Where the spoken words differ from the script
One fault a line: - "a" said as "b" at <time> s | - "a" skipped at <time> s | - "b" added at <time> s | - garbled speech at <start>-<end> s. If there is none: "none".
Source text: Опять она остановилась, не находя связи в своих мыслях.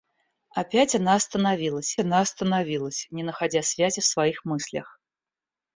- "она остановилась" added at 2.0 s